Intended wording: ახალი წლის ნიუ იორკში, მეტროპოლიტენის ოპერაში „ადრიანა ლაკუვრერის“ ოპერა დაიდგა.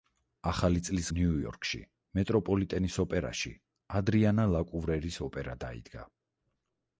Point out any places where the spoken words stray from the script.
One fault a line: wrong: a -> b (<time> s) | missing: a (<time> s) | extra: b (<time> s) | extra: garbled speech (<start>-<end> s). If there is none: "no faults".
no faults